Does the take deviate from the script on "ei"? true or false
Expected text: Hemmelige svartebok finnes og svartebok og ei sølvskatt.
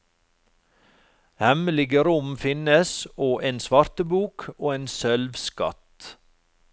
true